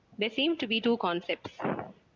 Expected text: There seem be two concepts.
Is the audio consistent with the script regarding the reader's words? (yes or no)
no